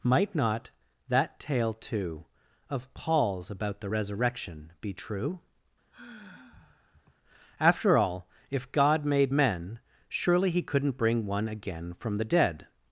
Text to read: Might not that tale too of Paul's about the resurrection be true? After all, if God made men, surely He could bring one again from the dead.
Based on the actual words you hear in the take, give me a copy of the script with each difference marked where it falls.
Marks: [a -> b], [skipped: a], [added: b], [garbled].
Might not that tale too of Paul's about the resurrection be true? After all, if God made men, surely He [could -> couldn't] bring one again from the dead.